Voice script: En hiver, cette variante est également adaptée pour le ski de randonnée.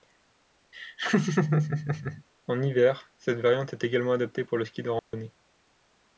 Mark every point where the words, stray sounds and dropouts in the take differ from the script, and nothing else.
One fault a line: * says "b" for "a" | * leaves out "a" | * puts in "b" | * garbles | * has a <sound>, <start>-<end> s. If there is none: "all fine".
* has a laugh, 0.7-2.2 s
* has a dropout, 5.0-5.1 s